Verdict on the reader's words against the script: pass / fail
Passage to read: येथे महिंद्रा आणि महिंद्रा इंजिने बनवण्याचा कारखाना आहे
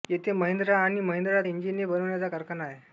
pass